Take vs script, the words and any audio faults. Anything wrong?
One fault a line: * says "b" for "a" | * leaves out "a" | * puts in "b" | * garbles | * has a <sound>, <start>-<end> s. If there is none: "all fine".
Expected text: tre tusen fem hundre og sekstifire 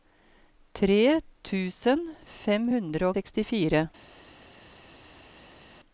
* leaves out "og"